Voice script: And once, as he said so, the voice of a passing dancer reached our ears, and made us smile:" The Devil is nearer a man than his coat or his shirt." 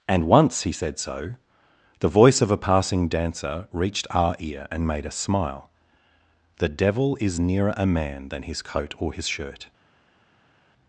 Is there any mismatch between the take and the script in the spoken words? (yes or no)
yes